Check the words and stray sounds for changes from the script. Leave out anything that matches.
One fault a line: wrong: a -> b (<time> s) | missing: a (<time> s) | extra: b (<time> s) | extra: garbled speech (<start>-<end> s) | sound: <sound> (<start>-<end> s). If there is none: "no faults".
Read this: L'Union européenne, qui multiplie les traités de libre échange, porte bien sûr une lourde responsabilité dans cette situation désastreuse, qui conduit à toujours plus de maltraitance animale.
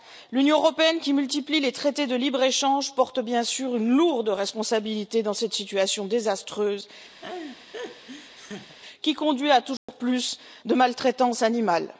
sound: laugh (7.2-8.8 s)
sound: dropout (9.8-9.9 s)